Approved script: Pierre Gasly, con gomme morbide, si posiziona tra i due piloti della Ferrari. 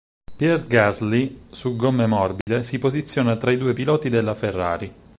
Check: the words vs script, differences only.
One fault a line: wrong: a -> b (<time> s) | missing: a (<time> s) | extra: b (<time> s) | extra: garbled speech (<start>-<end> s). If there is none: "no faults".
wrong: con -> su (1.5 s)